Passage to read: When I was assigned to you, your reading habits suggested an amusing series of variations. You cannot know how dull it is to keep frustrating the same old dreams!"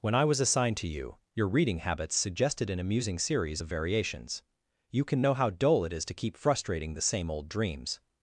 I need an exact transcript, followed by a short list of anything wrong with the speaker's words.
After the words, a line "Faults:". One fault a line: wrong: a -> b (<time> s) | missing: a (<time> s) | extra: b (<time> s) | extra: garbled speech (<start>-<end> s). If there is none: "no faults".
When I was assigned to you, your reading habits suggested an amusing series of variations. You can know how dull it is to keep frustrating the same old dreams!"
Faults:
wrong: cannot -> can (5.0 s)